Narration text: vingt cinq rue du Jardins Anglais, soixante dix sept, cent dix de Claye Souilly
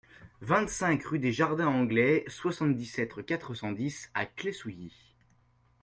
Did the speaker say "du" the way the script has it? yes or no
no